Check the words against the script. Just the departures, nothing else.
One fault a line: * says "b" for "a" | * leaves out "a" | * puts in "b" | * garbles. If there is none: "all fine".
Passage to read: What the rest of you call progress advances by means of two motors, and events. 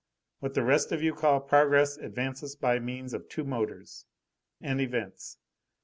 all fine